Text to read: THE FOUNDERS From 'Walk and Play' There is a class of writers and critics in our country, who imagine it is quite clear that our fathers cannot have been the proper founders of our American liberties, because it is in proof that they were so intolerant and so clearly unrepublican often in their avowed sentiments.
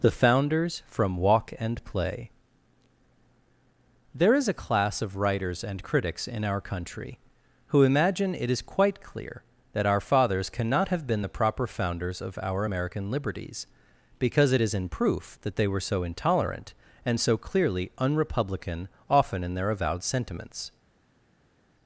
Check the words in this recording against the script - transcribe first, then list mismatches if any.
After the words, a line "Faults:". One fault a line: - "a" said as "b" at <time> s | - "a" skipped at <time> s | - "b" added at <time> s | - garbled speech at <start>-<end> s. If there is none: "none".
THE FOUNDERS From 'Walk and Play' There is a class of writers and critics in our country, who imagine it is quite clear that our fathers cannot have been the proper founders of our American liberties, because it is in proof that they were so intolerant and so clearly unrepublican often in their avowed sentiments.
Faults:
none